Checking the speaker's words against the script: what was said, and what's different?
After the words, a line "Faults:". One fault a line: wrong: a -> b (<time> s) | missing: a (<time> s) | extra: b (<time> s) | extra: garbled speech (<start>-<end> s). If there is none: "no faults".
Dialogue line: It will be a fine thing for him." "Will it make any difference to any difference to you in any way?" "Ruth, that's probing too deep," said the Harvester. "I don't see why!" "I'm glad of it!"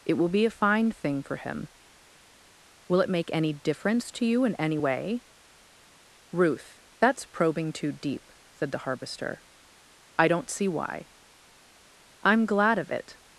It will be a fine thing for him." "Will it make any difference to you in any way?" "Ruth, that's probing too deep," said the Harvester. "I don't see why!" "I'm glad of it!"
Faults:
missing: any difference to (4.3 s)